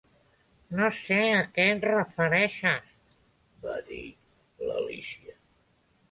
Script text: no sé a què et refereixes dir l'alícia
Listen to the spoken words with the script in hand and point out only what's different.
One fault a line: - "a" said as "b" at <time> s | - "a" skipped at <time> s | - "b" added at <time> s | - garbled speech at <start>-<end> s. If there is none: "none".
- "va" added at 3.6 s